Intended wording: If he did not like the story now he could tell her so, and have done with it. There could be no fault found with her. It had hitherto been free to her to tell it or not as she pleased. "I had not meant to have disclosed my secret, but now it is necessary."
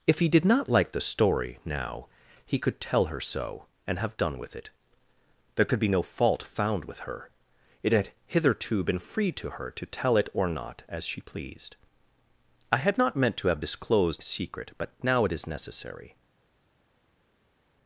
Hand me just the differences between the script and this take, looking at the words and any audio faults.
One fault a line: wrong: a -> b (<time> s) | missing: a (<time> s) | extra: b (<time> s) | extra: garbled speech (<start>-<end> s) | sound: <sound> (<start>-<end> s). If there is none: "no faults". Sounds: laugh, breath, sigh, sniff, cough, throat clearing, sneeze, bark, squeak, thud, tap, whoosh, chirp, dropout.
missing: my (14.2 s)